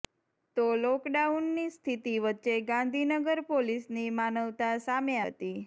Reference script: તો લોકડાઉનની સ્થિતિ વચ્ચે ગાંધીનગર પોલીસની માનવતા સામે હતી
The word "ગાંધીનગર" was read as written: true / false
true